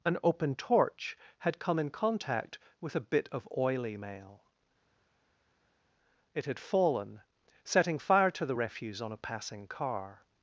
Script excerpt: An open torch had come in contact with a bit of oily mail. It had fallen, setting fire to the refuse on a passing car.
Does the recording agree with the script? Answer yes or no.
yes